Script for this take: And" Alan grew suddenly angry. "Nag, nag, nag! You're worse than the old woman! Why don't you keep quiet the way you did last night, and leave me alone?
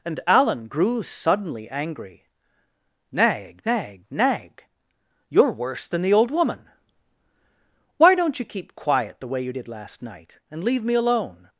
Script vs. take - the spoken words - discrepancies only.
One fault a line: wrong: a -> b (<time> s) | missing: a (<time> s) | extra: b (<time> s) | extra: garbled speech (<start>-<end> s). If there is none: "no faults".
no faults